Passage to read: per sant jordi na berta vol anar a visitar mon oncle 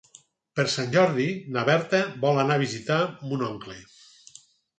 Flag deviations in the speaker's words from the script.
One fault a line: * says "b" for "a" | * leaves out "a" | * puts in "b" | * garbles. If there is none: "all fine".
all fine